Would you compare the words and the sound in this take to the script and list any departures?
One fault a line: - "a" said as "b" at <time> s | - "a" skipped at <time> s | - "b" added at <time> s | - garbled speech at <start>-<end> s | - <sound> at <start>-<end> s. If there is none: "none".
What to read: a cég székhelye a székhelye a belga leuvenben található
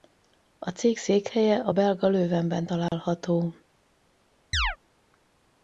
- "székhelye a" skipped at 1.7 s
- dropout at 2.9-2.9 s
- chirp at 4.5-4.8 s